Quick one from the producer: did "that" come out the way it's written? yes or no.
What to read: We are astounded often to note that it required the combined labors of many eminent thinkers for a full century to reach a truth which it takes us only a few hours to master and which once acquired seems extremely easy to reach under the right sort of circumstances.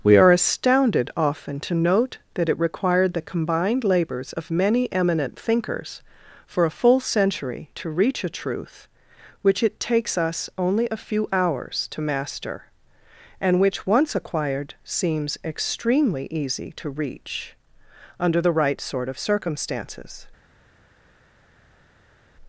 yes